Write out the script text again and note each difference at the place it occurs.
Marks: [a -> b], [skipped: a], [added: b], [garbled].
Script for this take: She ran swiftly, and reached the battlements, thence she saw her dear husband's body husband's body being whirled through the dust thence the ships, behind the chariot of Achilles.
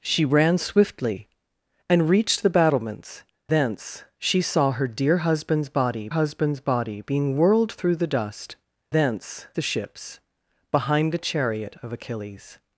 She ran swiftly, and reached the battlements, thence she saw her dear husband's body husband's body being whirled through the dust thence the ships, behind the chariot of Achilles.